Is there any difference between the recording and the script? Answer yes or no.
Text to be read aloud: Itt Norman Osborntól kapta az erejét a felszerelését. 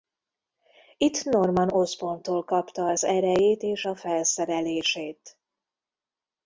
yes